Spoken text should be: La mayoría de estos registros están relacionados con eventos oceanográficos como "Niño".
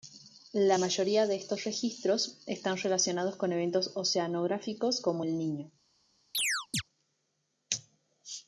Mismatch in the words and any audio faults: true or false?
true